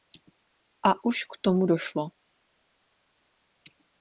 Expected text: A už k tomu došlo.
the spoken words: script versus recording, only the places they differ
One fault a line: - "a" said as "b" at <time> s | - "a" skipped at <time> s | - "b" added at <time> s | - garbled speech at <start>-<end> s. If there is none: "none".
none